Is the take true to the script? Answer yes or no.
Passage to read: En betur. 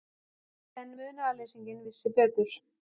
no